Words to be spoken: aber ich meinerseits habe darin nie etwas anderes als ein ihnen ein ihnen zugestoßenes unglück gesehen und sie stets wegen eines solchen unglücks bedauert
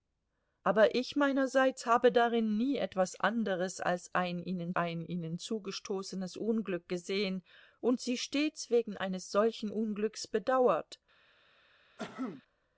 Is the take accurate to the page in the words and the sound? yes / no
no